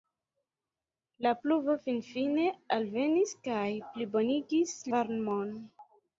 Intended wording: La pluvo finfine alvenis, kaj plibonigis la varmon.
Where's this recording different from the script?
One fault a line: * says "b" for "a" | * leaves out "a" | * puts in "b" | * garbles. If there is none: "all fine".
* leaves out "la"